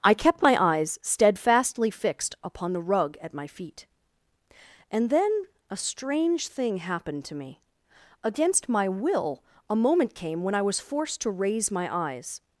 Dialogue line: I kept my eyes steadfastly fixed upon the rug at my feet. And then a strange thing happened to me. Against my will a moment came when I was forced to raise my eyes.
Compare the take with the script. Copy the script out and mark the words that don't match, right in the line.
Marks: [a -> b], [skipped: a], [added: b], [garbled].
I kept my eyes steadfastly fixed upon the rug at my feet. And then a strange thing happened to me. Against my will a moment came when I was forced to raise my eyes.